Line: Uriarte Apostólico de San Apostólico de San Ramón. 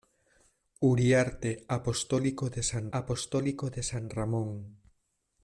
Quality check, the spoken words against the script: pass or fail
pass